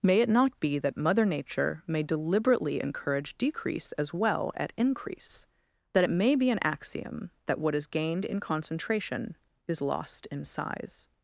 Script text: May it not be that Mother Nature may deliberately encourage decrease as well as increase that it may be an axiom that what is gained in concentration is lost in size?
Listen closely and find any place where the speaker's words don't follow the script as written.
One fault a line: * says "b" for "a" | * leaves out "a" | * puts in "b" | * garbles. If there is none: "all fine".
* says "at" for "as"